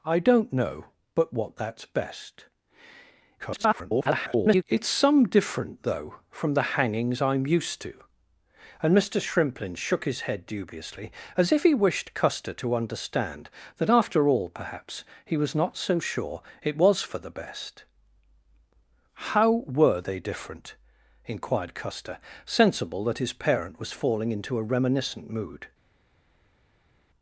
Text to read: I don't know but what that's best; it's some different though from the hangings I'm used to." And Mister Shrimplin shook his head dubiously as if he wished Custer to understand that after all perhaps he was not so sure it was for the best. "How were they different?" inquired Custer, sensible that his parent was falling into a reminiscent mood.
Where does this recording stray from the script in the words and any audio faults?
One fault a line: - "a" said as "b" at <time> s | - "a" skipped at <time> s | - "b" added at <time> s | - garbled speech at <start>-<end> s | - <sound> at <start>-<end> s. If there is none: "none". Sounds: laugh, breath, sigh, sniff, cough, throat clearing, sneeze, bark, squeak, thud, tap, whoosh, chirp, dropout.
- garbled speech at 3.4-4.6 s